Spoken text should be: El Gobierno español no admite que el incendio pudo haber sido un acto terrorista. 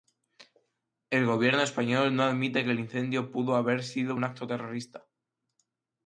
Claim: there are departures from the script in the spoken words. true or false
false